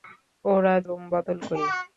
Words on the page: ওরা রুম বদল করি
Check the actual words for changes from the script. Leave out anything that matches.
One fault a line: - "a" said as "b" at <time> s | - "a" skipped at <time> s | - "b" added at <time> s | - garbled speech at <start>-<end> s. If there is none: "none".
none